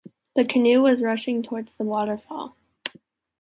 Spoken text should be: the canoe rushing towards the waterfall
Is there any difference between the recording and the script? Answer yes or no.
yes